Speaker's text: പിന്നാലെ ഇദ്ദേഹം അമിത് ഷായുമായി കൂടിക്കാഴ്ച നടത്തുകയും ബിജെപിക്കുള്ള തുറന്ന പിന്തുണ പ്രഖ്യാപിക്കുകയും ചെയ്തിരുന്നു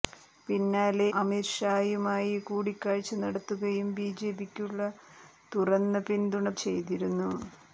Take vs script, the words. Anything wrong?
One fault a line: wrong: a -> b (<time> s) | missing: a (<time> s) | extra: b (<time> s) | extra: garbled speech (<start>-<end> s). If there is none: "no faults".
missing: ഇദ്ദേഹം (1.1 s)
missing: പ്രഖ്യാപിക്കുകയും (6.5 s)